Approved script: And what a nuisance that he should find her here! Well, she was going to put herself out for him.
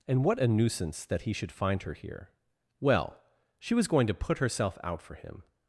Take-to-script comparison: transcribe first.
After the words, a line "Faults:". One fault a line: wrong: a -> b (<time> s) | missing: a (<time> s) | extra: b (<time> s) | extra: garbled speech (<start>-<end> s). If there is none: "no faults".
And what a nuisance that he should find her here! Well, she was going to put herself out for him.
Faults:
no faults